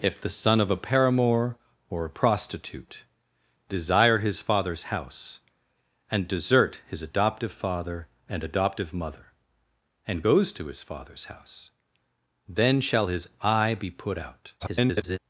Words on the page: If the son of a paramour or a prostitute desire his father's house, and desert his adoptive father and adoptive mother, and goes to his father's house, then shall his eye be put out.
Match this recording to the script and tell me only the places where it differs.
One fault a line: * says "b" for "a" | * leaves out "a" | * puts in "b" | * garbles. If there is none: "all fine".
* garbles